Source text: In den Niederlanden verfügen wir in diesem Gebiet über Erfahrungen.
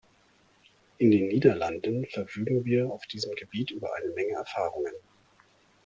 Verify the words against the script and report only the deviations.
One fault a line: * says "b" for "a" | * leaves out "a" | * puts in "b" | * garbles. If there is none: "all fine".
* says "auf" for "in"
* puts in "eine Menge"